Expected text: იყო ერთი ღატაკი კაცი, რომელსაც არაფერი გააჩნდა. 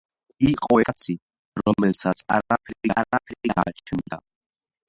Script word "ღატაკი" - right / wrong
wrong